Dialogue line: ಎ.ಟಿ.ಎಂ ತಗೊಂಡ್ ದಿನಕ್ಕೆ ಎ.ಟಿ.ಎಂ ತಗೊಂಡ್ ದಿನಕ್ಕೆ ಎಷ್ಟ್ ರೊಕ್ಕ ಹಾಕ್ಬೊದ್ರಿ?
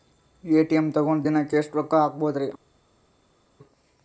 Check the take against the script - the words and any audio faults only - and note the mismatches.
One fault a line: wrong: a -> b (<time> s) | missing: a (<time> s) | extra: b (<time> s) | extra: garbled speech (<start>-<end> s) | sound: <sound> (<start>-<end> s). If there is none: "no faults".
missing: ಎ.ಟಿ.ಎಂ ತಗೊಂಡ್ ದಿನಕ್ಕೆ (1.6 s)